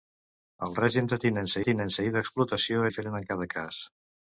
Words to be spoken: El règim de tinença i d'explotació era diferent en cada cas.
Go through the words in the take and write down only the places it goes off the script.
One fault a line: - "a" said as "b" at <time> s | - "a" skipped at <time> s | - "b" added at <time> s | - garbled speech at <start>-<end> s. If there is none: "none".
- "tinença" added at 1.7 s
- "era" skipped at 2.8 s